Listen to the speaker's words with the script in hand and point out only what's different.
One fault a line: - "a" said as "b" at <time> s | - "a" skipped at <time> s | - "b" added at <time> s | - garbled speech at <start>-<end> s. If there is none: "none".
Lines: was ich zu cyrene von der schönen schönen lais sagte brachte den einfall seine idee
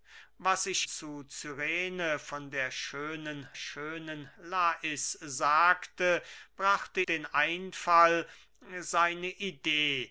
none